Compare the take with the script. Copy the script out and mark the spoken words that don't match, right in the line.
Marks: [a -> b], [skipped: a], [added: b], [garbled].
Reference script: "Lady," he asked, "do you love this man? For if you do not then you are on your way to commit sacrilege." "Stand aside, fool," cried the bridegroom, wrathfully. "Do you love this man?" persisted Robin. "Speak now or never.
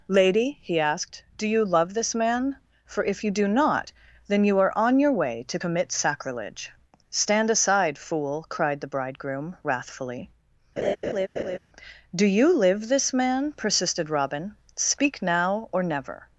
"Lady," he asked, "do you love this man? For if you do not then you are on your way to commit sacrilege." "Stand aside, fool," cried the bridegroom, wrathfully. "Do you [love -> live] this man?" persisted Robin. "Speak now or never.